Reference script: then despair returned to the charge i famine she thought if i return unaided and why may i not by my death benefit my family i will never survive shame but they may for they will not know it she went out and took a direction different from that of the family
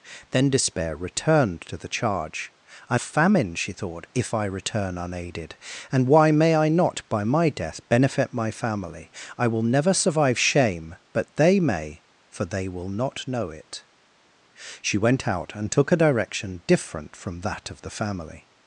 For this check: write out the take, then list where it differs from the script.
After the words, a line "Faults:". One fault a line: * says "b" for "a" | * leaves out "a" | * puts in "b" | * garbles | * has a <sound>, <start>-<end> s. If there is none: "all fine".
then despair returned to the charge i famine she thought if i return unaided and why may i not by my death benefit my family i will never survive shame but they may for they will not know it she went out and took a direction different from that of the family
Faults:
all fine